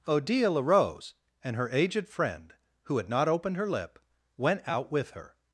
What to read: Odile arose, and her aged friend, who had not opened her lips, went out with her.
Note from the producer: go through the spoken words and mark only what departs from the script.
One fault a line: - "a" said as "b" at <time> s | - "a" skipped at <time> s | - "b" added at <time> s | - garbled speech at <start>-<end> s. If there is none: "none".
- "lips" said as "lip" at 3.7 s